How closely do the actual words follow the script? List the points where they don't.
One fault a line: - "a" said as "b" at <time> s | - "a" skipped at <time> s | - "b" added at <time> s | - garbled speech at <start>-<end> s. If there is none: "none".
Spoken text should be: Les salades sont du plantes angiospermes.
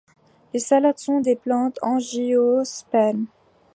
- "du" said as "des" at 1.2 s